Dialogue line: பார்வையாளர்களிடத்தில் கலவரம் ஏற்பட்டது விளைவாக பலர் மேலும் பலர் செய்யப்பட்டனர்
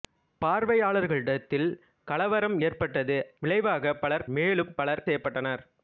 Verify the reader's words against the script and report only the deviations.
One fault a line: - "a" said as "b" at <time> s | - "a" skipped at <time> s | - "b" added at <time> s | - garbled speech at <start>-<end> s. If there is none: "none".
none